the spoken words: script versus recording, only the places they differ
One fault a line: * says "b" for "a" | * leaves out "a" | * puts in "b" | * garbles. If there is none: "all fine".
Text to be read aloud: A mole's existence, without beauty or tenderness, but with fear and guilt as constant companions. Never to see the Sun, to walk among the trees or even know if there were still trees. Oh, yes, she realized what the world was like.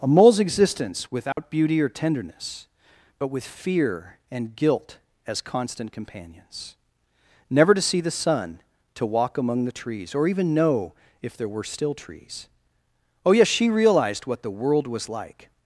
all fine